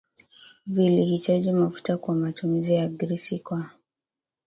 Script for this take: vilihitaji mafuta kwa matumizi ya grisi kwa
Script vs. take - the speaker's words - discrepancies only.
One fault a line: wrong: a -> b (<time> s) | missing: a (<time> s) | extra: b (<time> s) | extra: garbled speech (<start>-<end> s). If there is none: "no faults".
no faults